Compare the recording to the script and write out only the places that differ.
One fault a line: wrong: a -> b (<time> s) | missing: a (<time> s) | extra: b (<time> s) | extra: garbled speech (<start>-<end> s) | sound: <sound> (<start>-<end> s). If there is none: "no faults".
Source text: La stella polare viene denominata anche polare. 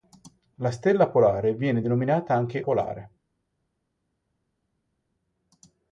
no faults